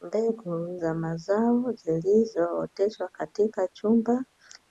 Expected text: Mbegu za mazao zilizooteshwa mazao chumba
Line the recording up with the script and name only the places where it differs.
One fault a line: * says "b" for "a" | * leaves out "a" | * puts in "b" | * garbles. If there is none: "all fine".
* says "katika" for "mazao"